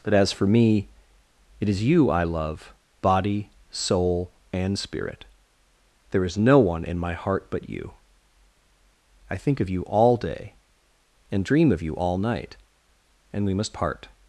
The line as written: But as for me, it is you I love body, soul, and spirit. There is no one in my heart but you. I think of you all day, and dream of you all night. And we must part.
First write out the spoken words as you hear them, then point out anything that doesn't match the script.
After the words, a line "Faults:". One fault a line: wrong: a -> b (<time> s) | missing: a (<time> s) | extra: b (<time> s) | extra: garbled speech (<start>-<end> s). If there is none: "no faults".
But as for me, it is you I love body, soul, and spirit. There is no one in my heart but you. I think of you all day, and dream of you all night. And we must part.
Faults:
no faults